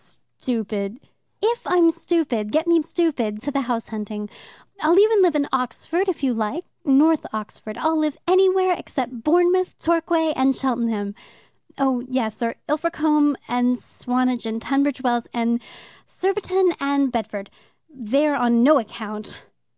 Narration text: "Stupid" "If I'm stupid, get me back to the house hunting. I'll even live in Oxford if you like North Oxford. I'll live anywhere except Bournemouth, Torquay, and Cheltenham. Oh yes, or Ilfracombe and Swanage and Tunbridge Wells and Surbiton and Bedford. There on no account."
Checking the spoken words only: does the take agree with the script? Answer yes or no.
no